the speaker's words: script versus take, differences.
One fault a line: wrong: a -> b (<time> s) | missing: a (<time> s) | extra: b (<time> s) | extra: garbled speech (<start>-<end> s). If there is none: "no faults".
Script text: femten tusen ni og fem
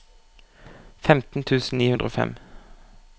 extra: hundre (1.9 s)